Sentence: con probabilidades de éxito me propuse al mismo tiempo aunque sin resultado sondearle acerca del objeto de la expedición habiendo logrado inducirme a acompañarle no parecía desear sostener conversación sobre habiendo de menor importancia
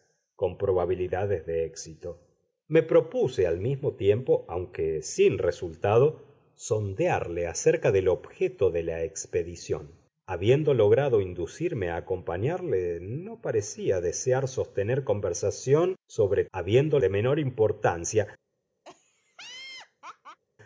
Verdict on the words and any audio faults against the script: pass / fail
fail